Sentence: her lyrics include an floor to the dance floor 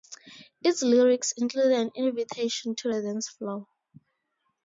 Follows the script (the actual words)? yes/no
no